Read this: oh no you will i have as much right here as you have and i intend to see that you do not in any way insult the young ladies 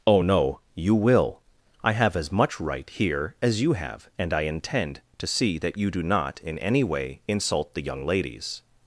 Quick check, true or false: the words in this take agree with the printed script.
true